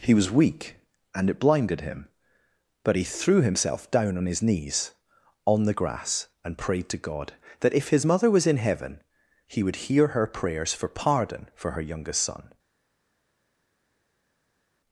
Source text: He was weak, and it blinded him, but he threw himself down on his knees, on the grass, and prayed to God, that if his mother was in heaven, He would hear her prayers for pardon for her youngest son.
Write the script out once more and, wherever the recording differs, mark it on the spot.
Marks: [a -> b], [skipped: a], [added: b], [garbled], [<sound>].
He was weak, and it blinded him, but he threw himself down on his knees, on the grass, and prayed to God, that if his mother was in heaven, He would hear her prayers for pardon for her youngest son.